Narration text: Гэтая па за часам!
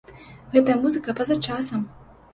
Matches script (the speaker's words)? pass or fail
fail